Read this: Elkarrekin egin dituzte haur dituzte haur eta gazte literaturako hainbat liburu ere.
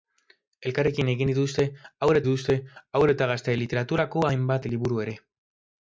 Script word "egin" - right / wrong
right